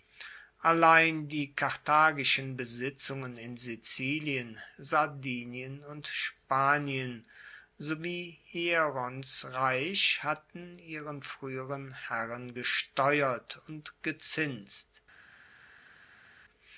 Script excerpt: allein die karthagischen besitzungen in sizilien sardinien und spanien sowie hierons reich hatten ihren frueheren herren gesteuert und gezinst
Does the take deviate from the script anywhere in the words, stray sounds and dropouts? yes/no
no